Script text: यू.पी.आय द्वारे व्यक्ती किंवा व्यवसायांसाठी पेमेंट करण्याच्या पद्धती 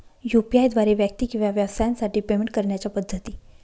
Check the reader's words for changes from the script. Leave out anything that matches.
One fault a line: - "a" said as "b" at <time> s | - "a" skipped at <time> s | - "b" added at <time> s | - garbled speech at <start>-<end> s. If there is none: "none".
none